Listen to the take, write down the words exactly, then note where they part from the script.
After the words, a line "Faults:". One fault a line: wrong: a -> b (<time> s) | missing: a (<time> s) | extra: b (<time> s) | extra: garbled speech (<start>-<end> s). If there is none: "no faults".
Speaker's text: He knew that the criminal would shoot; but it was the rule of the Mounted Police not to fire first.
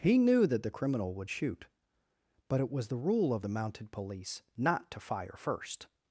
He knew that the criminal would shoot; but it was the rule of the Mounted Police not to fire first.
Faults:
no faults